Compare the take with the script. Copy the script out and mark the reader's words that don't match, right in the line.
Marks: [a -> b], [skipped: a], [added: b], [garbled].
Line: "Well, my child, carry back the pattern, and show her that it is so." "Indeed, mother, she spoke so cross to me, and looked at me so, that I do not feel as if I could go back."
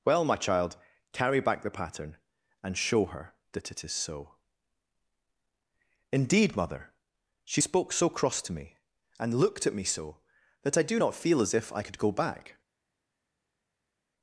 "Well, my child, carry back the pattern, and show her that it is so." "Indeed, mother, she spoke so cross to me, and looked at me so, that I do not feel as if I could go back."